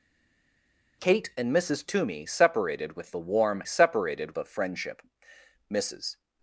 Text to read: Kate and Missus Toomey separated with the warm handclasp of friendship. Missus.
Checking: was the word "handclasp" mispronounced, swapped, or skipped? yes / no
yes